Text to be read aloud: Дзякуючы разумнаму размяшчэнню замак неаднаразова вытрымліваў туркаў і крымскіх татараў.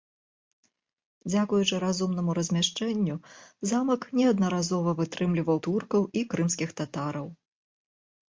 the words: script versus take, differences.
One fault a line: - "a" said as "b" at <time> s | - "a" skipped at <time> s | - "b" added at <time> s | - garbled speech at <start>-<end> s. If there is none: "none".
none